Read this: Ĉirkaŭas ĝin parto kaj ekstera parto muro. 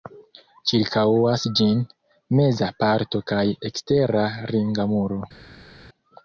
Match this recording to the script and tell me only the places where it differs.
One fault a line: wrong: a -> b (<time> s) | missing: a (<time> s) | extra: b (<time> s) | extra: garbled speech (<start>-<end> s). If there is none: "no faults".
extra: meza (2.4 s)
wrong: parto -> ringa (4.6 s)